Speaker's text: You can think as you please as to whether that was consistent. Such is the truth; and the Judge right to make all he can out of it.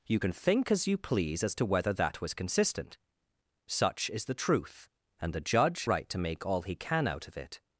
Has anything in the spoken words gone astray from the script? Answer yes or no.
no